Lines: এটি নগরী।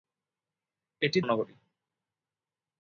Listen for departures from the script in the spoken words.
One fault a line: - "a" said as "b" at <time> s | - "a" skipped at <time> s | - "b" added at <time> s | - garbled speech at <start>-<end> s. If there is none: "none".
none